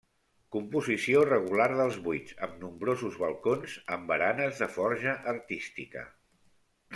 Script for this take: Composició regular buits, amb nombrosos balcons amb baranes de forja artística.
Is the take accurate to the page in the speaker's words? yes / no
no